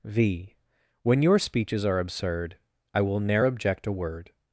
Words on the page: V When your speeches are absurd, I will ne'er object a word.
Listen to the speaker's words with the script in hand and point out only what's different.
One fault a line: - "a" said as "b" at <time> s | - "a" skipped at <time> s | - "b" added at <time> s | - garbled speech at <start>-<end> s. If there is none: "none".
none